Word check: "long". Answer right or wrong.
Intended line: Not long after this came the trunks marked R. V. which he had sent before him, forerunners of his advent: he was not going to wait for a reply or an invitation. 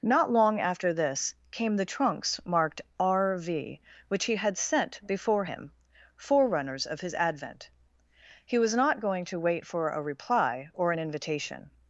right